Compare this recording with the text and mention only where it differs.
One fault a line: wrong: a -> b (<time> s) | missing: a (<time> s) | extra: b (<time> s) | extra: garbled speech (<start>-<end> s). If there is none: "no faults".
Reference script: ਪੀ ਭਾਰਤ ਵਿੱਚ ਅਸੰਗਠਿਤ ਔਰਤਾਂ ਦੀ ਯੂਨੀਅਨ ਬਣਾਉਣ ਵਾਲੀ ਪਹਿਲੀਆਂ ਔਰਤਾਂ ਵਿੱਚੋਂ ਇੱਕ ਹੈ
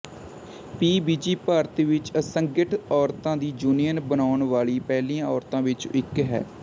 extra: ਵਿਜੀ (1.0 s)